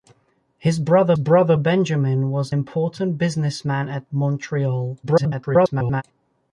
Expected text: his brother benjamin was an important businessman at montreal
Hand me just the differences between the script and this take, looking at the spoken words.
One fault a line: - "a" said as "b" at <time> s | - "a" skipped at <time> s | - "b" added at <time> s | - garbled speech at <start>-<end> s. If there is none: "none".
- "brother" added at 1.2 s
- "an" skipped at 2.5 s
- garbled speech at 5.0-6.0 s